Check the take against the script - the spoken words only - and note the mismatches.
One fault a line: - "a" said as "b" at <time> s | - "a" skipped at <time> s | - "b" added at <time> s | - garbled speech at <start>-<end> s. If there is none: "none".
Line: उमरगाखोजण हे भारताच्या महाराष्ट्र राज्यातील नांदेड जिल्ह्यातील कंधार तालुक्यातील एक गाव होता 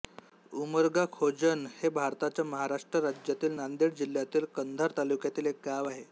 - "होता" said as "आहे" at 5.9 s